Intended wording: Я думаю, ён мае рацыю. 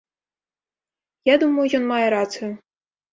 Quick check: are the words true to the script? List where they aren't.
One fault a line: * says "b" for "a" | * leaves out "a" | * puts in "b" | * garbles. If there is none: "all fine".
all fine